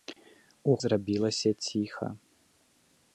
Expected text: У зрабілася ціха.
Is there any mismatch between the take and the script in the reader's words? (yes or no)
no